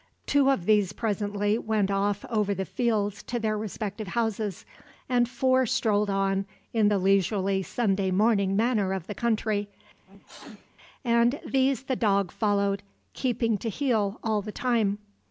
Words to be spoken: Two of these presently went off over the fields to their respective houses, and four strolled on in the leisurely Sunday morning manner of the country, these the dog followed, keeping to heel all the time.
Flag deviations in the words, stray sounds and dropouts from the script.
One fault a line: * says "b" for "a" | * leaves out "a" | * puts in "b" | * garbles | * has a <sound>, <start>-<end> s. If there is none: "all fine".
* has a sneeze, 10.0-10.7 s
* puts in "and"